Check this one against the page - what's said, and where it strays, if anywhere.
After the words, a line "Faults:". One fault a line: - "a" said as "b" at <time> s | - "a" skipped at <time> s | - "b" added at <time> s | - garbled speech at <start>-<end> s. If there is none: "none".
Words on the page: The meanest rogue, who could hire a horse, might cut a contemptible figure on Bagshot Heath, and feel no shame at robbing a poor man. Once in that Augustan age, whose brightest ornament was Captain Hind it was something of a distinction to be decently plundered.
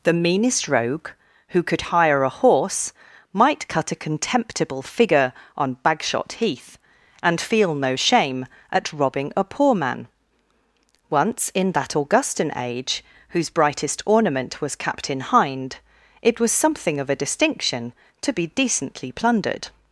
The meanest rogue, who could hire a horse, might cut a contemptible figure on Bagshot Heath, and feel no shame at robbing a poor man. Once in that Augustan age, whose brightest ornament was Captain Hind it was something of a distinction to be decently plundered.
Faults:
none